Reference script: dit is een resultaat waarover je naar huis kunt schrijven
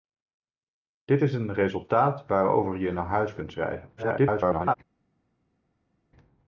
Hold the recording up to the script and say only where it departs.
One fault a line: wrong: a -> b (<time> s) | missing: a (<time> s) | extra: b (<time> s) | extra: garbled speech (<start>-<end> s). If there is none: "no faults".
extra: garbled speech (4.0-4.7 s)